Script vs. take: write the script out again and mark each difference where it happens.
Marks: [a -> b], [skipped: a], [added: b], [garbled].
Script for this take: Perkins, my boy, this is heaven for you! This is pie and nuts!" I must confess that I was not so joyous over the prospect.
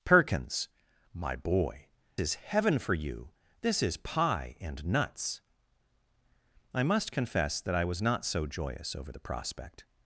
Perkins, my boy, [skipped: this] is heaven for you! This is pie and nuts!" I must confess that I was not so joyous over the prospect.